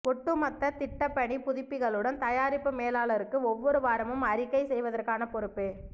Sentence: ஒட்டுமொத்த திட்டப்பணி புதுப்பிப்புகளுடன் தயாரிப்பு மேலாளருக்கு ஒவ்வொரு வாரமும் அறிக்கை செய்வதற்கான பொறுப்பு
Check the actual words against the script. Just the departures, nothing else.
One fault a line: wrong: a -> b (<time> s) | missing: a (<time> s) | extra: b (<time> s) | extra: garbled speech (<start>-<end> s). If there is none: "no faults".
no faults